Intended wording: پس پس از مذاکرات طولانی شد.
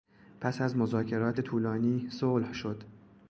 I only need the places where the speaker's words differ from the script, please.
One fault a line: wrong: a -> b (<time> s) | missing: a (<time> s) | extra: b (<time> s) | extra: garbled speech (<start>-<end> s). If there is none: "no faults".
missing: پس (0.6 s)
extra: صلح (2.1 s)